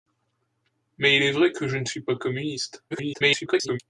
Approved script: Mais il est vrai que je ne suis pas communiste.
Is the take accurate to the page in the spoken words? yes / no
no